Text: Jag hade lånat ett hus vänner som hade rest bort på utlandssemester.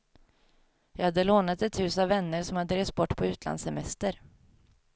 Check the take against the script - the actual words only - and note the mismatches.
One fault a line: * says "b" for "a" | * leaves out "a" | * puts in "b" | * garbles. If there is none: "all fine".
* puts in "av"